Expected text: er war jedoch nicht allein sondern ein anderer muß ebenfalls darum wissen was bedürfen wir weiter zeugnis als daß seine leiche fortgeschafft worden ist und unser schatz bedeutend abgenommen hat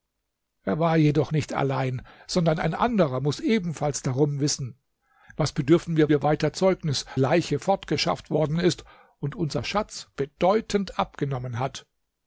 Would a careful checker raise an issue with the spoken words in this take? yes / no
yes